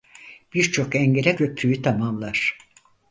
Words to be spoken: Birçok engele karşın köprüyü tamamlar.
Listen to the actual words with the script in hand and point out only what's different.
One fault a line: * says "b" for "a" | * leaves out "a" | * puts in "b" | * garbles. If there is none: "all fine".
* leaves out "karşın"